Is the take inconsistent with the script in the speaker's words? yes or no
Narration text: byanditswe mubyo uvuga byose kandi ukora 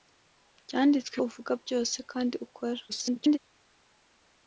yes